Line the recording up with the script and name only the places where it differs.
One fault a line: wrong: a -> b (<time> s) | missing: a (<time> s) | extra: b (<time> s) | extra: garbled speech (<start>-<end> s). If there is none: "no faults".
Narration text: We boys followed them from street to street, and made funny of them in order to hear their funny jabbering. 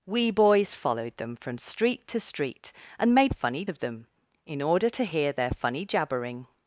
no faults